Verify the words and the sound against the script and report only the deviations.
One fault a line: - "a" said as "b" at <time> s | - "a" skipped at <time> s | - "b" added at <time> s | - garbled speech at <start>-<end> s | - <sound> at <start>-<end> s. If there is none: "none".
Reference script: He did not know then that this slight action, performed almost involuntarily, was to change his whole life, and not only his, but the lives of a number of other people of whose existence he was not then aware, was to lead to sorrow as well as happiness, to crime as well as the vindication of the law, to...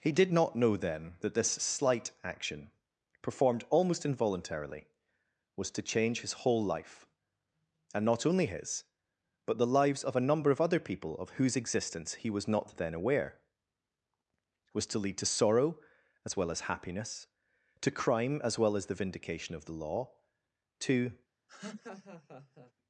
- laugh at 21.5-22.7 s